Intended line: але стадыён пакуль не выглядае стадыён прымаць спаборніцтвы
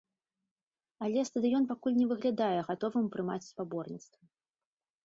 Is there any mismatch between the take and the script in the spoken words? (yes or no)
yes